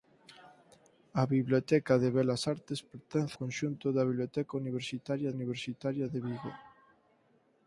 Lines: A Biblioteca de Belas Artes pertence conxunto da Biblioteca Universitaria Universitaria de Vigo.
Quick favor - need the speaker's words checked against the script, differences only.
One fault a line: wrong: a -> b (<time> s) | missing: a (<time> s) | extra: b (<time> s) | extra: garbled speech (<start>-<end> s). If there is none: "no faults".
no faults